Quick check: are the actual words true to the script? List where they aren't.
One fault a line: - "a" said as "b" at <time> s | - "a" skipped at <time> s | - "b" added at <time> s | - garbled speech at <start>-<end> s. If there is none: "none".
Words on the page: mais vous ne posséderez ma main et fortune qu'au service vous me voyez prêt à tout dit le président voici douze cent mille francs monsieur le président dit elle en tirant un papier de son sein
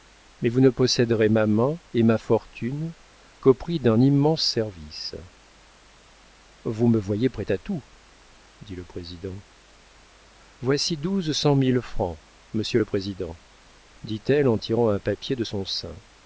- "ma" added at 2.0 s
- "prix d'un immense" added at 3.5 s